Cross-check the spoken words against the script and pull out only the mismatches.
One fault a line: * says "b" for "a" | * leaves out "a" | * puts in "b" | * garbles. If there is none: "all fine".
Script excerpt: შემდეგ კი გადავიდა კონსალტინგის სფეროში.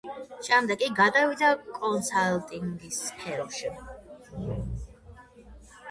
all fine